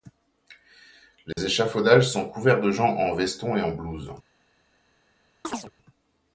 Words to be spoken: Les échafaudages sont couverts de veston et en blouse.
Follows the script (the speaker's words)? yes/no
no